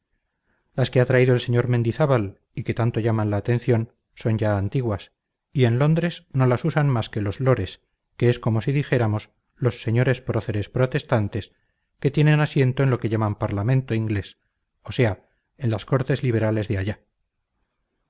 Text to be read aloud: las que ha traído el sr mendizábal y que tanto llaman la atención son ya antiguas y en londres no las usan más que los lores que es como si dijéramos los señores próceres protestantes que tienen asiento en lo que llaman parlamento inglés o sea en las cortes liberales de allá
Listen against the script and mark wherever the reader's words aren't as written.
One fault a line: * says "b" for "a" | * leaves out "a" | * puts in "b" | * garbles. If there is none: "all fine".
all fine